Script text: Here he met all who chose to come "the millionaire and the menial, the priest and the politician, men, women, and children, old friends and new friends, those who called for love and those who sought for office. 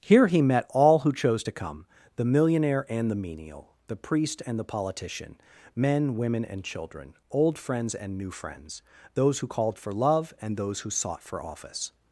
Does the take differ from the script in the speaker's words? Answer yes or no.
no